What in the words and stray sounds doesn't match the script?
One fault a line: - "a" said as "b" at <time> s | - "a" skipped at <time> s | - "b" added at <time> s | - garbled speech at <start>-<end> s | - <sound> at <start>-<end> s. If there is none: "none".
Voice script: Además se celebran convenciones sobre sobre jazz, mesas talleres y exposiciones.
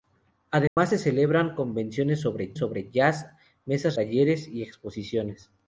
- dropout at 0.7-0.8 s